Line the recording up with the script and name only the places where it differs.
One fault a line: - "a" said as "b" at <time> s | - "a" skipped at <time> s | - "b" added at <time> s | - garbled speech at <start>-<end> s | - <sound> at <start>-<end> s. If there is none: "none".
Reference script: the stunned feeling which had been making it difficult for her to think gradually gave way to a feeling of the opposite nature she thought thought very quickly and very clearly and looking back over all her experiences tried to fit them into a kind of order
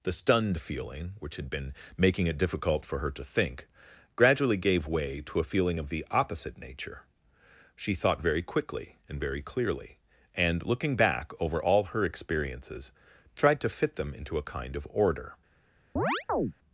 - "thought" skipped at 8.2 s
- chirp at 16.0-16.5 s